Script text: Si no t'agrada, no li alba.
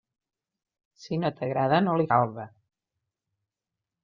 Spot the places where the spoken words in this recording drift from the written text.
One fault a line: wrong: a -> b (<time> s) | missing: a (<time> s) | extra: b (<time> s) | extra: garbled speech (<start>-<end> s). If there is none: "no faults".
no faults